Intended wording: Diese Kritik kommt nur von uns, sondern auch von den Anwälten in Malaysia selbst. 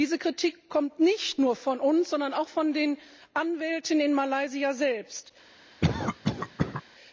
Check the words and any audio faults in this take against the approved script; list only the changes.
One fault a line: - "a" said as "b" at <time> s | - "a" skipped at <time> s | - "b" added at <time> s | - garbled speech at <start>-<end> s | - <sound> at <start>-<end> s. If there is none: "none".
- "nicht" added at 1.0 s
- cough at 5.8-6.8 s